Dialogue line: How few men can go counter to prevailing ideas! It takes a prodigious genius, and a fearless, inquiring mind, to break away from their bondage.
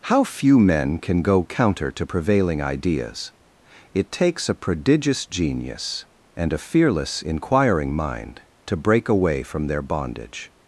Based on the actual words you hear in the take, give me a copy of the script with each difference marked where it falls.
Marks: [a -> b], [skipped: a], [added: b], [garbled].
How few men can go counter to prevailing ideas! It takes a prodigious genius, and a fearless, inquiring mind, to break away from their bondage.